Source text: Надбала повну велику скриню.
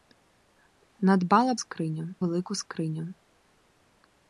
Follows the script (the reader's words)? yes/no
no